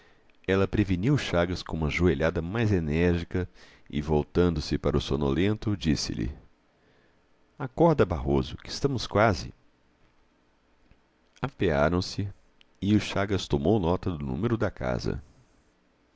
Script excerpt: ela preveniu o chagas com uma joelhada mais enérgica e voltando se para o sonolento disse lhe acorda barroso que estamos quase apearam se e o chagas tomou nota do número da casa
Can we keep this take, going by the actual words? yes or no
yes